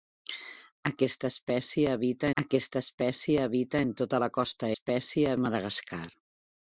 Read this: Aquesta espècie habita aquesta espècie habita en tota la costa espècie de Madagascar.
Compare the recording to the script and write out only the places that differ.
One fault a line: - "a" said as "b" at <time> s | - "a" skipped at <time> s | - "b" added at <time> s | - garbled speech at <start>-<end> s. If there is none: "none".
none